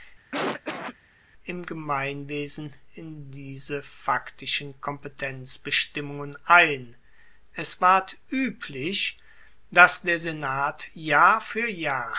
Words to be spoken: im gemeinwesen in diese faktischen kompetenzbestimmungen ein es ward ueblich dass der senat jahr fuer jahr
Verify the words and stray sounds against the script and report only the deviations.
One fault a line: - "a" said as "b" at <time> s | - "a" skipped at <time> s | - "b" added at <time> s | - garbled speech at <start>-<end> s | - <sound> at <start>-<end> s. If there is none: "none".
- cough at 0.3-1.0 s